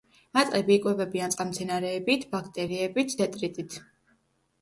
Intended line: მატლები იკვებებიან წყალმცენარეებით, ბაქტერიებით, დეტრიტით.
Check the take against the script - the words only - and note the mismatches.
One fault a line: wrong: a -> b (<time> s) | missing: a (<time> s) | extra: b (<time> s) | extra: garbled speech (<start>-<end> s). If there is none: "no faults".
no faults